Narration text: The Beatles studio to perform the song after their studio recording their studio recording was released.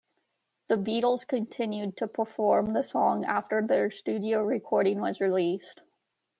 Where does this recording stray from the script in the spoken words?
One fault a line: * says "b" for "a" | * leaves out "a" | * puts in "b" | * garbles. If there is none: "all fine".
* says "continued" for "studio"
* leaves out "their studio recording"